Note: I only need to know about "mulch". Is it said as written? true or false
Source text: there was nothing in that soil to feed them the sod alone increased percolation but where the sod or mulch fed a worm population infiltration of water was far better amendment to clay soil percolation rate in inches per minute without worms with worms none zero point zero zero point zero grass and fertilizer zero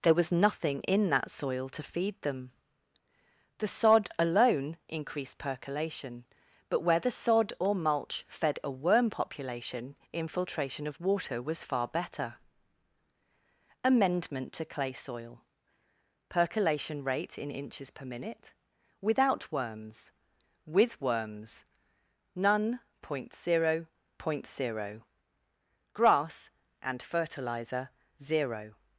true